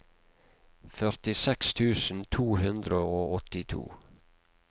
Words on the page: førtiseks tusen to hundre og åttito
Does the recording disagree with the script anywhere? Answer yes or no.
no